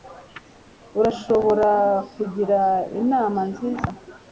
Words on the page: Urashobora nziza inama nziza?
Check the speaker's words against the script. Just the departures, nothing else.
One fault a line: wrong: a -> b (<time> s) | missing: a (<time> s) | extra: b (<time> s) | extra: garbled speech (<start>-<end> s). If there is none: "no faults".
wrong: nziza -> kungira (2.1 s)